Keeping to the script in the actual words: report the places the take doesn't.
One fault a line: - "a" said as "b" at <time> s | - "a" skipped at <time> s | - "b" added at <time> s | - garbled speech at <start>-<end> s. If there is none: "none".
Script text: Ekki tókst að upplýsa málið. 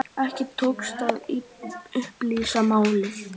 none